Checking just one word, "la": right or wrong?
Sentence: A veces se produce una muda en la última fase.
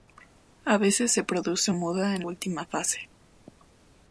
wrong